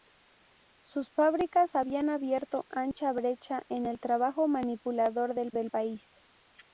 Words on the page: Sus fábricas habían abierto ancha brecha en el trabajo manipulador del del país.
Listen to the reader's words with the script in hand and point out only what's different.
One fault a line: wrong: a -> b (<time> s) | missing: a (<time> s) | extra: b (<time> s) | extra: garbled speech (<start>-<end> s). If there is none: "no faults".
no faults